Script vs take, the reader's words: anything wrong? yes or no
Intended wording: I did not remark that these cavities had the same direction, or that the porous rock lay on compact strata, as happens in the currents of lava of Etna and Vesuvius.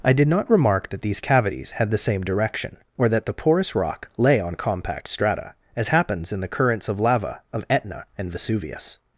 no